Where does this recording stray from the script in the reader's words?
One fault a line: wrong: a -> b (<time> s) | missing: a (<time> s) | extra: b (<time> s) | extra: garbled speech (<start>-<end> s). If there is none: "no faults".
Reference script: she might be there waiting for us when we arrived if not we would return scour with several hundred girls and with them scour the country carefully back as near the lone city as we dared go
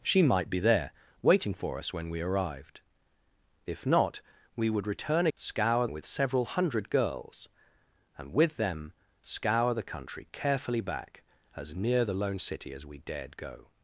no faults